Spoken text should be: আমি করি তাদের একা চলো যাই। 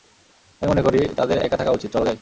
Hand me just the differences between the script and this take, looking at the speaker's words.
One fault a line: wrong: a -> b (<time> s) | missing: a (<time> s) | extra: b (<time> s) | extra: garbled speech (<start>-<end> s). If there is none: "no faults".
extra: মনে (0.7 s)
extra: থাকা উচিত (1.6 s)